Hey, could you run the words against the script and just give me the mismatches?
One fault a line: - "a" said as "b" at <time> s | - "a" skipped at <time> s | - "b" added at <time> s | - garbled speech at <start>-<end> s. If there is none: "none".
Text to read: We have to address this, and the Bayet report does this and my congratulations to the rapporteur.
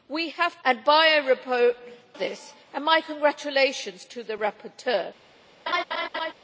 - "to address this" skipped at 0.6 s
- "does" skipped at 1.8 s